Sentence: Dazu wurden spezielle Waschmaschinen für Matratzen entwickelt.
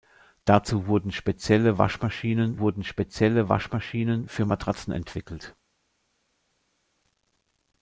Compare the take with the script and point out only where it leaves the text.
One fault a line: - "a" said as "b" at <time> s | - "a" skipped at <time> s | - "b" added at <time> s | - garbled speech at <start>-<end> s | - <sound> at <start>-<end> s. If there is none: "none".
- "wurden spezielle Waschmaschinen" added at 2.6 s